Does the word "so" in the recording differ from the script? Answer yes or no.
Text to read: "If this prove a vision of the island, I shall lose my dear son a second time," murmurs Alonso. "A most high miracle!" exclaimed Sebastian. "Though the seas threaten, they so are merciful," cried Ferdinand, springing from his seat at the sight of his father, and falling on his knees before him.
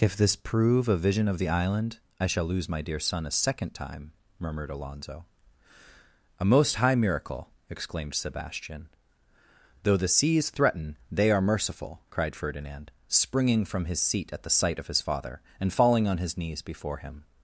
yes